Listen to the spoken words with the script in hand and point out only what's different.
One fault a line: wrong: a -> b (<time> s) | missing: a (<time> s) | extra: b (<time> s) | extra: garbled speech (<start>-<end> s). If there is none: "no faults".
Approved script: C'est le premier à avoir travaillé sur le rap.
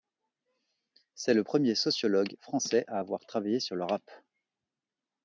extra: sociologue français (1.7 s)